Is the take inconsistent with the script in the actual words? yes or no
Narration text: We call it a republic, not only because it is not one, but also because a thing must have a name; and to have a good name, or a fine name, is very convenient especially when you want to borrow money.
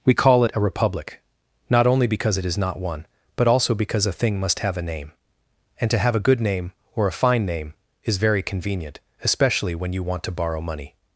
no